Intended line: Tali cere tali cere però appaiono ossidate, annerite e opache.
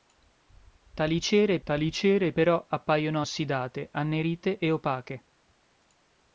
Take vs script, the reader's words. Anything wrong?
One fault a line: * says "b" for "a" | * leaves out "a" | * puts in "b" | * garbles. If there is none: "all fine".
all fine